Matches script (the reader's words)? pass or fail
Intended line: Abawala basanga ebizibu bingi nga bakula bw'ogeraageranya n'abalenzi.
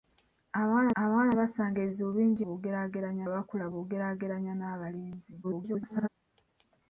fail